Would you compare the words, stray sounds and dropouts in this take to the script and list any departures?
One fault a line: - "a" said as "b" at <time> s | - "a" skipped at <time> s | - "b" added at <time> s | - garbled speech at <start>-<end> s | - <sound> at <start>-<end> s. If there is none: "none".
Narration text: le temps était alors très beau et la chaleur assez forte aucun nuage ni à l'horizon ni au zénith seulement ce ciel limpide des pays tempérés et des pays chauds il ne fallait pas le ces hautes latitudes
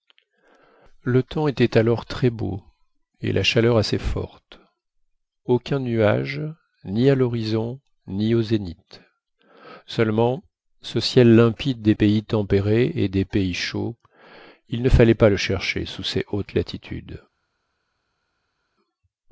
- "chercher sous" added at 15.4 s